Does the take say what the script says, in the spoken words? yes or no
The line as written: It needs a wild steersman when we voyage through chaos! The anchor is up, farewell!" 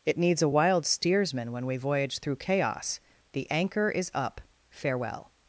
yes